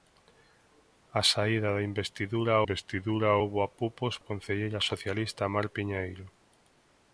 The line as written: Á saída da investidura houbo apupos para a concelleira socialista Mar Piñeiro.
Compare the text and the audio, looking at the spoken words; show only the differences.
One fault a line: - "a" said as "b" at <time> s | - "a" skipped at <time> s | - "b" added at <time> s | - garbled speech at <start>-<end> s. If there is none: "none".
- "investidura" added at 2.6 s
- "para" skipped at 4.1 s